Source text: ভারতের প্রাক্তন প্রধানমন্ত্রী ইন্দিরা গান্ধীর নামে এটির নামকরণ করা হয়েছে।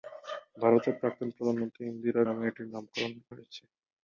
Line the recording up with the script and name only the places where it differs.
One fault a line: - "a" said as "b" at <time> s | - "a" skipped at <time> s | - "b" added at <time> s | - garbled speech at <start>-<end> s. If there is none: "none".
- "গান্ধীর" skipped at 2.2 s
- "করা" skipped at 3.1 s